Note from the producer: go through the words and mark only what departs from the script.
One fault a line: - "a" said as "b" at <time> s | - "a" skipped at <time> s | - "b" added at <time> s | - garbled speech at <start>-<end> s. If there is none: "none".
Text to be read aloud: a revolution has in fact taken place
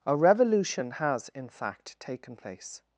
none